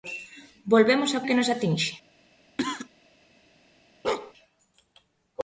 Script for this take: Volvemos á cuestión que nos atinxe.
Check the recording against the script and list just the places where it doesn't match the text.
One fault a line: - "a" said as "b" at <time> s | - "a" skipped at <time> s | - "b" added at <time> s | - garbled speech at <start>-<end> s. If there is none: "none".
- "cuestión" skipped at 1.2 s